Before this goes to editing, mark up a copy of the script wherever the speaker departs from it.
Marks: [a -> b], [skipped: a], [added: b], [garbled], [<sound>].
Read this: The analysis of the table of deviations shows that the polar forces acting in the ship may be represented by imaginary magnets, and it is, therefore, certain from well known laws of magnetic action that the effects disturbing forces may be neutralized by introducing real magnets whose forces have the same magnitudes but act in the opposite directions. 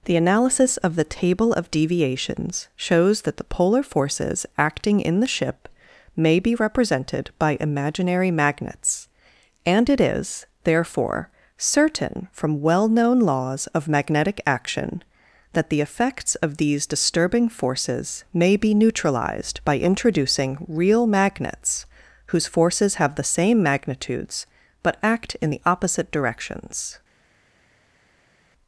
The analysis of the table of deviations shows that the polar forces acting in the ship may be represented by imaginary magnets, and it is, therefore, certain from well known laws of magnetic action that the effects [added: of these] disturbing forces may be neutralized by introducing real magnets whose forces have the same magnitudes but act in the opposite directions.